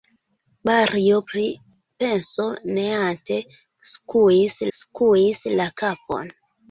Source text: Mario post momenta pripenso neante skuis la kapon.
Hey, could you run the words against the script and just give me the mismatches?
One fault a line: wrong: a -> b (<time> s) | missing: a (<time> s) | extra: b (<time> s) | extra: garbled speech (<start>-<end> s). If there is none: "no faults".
missing: post momenta (1.2 s)
extra: skuis (4.8 s)